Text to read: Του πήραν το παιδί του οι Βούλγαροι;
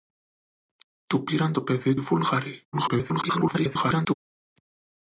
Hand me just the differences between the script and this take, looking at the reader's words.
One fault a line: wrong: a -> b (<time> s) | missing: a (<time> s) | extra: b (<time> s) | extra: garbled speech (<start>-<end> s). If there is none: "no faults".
missing: του (2.0 s)
extra: garbled speech (2.7-4.1 s)